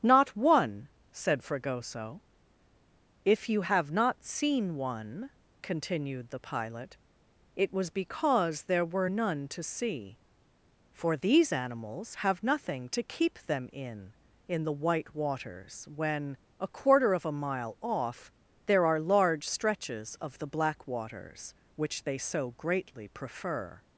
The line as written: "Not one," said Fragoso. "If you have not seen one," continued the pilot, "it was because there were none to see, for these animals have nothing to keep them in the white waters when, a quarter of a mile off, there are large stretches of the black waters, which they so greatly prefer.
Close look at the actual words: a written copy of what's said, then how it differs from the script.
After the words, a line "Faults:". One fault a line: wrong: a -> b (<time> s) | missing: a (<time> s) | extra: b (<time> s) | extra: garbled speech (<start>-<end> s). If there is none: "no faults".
"Not one," said Fragoso. "If you have not seen one," continued the pilot, "it was because there were none to see, for these animals have nothing to keep them in in the white waters when, a quarter of a mile off, there are large stretches of the black waters, which they so greatly prefer.
Faults:
extra: in (14.5 s)